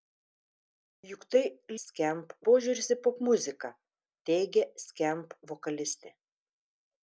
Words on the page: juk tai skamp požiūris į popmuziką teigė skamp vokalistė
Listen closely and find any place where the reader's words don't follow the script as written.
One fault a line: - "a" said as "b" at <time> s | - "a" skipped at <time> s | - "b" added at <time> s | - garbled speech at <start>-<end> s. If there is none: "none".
none